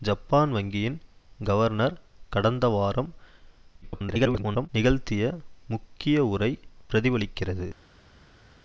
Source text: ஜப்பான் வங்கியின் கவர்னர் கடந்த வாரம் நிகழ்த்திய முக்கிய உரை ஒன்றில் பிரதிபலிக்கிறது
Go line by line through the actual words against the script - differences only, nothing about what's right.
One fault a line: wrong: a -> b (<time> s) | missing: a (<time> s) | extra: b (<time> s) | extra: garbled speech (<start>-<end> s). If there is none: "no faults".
extra: garbled speech (3.8-4.7 s)
missing: ஒன்றில் (6.5 s)